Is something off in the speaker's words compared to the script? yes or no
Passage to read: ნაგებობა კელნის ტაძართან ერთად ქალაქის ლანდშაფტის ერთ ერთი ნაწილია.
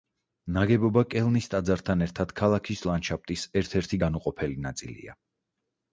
yes